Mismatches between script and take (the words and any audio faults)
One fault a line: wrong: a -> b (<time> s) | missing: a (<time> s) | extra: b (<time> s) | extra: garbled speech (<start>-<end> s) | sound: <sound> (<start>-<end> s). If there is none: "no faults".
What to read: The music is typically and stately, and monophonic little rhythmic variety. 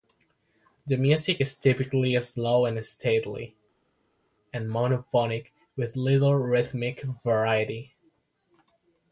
extra: slow (2.2 s)
extra: with (5.8 s)